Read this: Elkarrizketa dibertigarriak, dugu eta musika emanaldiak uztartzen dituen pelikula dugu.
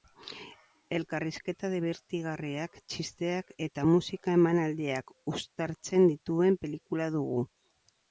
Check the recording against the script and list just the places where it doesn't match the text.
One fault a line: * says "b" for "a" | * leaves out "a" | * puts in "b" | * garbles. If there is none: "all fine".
* says "txisteak" for "dugu"